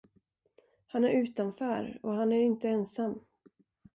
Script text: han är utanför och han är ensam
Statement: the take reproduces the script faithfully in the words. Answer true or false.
false